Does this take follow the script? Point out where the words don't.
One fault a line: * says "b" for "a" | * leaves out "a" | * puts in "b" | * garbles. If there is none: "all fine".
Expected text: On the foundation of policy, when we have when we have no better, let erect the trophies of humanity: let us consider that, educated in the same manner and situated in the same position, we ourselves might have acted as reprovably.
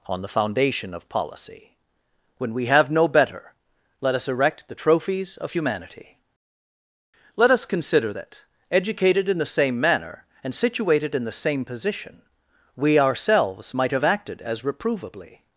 * leaves out "when we have"
* puts in "us"